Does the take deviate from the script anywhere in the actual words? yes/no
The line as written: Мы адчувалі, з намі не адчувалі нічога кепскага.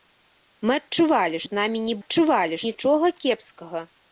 no